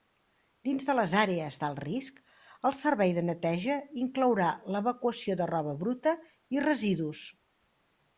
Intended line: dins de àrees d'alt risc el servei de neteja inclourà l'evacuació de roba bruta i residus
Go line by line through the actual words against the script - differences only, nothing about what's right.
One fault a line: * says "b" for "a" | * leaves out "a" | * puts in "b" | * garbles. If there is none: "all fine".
* puts in "les"